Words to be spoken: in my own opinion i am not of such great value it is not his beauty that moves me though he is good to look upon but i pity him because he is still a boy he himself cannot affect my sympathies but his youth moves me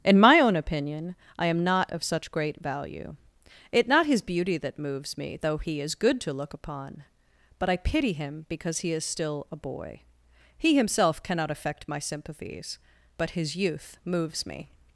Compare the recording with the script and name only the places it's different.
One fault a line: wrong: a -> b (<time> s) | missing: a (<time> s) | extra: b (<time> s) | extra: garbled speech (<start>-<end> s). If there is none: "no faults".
missing: is (3.9 s)